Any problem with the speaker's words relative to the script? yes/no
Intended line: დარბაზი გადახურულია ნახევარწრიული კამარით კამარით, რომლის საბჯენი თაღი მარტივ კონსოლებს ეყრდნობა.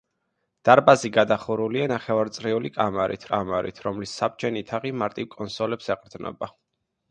no